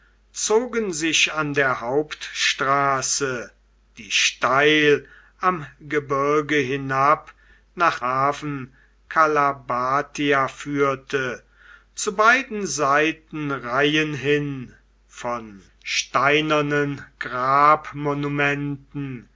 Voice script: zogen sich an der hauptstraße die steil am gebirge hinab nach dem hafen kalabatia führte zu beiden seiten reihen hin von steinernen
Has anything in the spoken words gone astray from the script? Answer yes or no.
yes